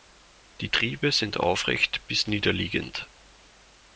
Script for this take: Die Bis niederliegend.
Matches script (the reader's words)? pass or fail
fail